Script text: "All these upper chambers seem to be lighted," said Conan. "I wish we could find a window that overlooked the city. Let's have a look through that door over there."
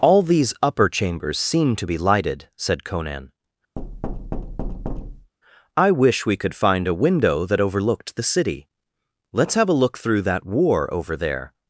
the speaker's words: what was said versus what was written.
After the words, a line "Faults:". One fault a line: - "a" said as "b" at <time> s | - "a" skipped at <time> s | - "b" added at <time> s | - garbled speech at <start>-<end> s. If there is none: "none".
"All these upper chambers seem to be lighted," said Conan. "I wish we could find a window that overlooked the city. Let's have a look through that war over there."
Faults:
- "door" said as "war" at 10.5 s